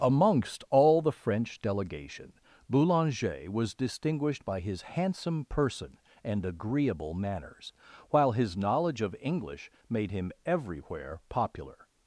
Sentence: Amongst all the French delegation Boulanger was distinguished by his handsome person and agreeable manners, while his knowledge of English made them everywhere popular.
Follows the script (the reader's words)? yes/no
no